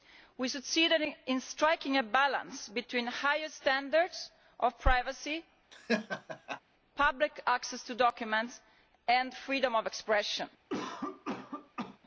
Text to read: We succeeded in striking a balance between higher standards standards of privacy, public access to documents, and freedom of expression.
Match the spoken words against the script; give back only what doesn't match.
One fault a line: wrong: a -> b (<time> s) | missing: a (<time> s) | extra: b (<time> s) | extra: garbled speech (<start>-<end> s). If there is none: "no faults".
missing: standards (4.3 s)